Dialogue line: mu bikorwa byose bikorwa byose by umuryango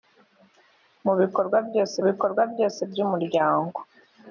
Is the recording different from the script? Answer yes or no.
no